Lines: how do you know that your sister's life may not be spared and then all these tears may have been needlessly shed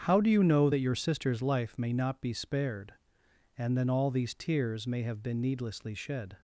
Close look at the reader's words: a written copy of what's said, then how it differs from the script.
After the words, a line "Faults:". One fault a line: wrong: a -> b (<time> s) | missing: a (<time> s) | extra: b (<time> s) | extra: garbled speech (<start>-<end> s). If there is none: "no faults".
how do you know that your sister's life may not be spared and then all these tears may have been needlessly shed
Faults:
no faults